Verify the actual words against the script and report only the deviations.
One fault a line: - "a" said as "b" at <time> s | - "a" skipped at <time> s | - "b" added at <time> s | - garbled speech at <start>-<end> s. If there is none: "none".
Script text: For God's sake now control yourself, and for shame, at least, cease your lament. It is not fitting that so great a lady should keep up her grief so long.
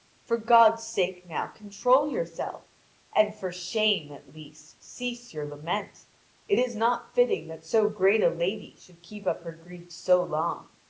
none